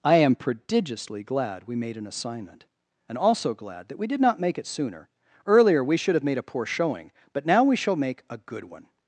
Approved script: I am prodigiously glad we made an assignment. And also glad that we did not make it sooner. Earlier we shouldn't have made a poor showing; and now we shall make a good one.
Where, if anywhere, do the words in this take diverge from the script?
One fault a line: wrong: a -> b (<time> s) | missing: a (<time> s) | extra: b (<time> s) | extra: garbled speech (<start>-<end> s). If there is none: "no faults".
wrong: shouldn't -> should (6.0 s)
wrong: and -> but (7.3 s)